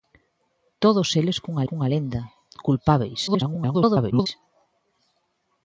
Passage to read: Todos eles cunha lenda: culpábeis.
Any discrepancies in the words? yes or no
yes